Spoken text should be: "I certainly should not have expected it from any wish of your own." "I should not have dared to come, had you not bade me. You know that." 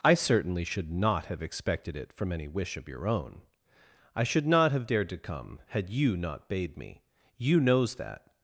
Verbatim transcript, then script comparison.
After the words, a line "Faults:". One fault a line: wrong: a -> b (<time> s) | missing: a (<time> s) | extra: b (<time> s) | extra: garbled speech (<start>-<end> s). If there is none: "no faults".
"I certainly should not have expected it from any wish of your own." "I should not have dared to come, had you not bade me. You knows that."
Faults:
wrong: know -> knows (7.6 s)